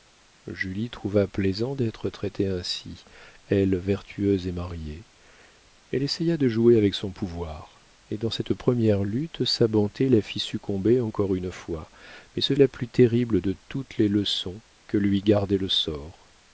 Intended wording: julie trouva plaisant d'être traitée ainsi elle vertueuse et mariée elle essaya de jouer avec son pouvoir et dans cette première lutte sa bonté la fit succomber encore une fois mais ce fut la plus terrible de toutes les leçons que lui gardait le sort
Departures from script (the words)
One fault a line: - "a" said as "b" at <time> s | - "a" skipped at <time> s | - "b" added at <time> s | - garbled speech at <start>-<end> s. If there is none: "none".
- "fut" skipped at 12.6 s